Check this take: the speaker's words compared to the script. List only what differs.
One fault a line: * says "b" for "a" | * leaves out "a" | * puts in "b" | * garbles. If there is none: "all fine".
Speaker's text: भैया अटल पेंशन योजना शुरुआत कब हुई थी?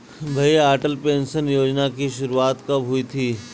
* puts in "की"